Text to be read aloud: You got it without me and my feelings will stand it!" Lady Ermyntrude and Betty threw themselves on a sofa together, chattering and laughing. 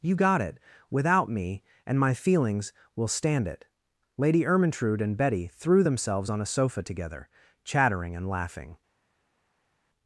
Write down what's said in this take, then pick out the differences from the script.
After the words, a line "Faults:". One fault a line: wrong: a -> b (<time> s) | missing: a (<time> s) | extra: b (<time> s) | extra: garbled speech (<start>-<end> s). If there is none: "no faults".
You got it without me and my feelings will stand it!" Lady Ermyntrude and Betty threw themselves on a sofa together, chattering and laughing.
Faults:
no faults